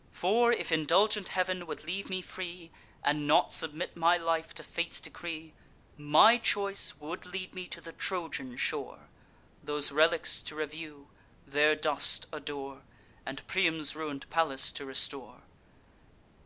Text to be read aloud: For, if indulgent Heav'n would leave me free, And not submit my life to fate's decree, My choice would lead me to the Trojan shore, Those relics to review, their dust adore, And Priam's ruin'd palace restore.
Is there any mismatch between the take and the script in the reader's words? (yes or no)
yes